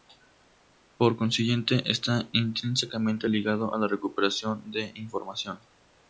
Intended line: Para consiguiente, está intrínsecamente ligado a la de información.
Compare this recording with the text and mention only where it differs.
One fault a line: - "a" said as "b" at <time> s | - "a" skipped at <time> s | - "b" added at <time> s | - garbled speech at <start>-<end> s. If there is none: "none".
- "Para" said as "Por" at 1.0 s
- "recuperación" added at 3.9 s